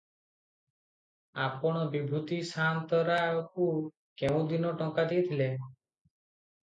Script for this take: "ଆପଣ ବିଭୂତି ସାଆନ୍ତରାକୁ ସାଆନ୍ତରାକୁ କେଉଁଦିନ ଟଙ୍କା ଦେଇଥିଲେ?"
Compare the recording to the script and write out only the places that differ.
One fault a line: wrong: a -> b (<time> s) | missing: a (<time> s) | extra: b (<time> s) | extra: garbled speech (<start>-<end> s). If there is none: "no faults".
missing: ସାଆନ୍ତରାକୁ (3.7 s)